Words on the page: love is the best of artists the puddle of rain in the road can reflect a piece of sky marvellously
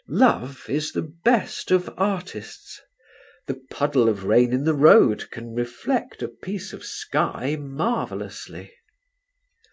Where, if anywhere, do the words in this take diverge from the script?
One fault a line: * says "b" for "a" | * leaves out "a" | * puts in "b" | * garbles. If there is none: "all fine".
all fine